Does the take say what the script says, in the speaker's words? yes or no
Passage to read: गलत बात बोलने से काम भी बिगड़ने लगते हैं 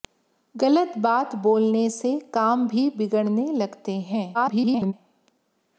no